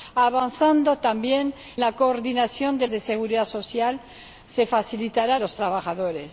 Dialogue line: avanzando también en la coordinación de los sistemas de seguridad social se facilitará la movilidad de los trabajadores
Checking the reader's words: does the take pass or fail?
fail